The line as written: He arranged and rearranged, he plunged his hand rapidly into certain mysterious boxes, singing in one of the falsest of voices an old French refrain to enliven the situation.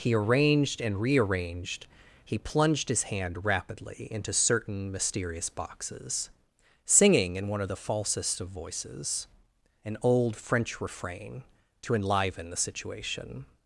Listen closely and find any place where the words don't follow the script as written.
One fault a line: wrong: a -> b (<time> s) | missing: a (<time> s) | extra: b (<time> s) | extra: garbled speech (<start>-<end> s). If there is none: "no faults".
no faults